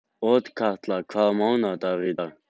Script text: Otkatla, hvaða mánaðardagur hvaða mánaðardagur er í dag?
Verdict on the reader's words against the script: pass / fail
fail